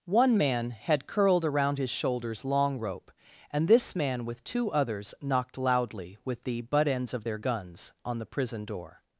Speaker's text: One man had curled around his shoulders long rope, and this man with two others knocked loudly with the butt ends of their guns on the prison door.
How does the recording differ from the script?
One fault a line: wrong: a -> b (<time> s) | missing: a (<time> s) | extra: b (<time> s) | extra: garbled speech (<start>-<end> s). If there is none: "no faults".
no faults